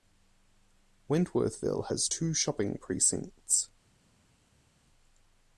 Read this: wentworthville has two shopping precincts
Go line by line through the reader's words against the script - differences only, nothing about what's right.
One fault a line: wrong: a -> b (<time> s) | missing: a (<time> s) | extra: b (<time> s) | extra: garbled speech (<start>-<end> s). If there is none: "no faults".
no faults